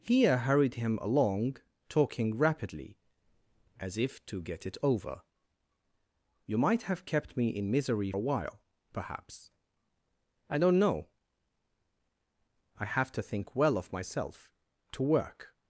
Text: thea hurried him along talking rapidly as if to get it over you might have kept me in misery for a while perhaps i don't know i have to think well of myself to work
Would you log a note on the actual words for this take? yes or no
yes